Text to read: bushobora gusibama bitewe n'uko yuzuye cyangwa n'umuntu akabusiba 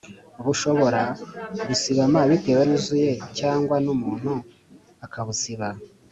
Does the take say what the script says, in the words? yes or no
no